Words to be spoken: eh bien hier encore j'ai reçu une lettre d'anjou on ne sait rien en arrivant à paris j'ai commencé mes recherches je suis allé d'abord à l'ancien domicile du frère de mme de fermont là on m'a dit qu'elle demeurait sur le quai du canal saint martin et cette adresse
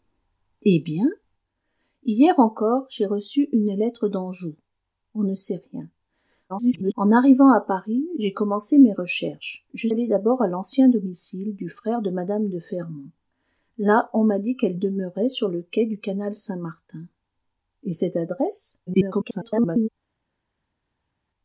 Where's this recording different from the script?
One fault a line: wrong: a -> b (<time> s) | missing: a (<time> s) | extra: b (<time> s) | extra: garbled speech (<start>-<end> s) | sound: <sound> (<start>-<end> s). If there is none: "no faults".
extra: garbled speech (6.5-6.9 s)
missing: suis (9.9 s)
extra: garbled speech (18.9-19.9 s)